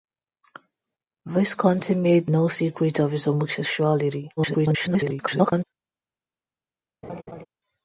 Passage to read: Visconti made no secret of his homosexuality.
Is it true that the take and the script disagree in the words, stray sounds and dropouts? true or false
true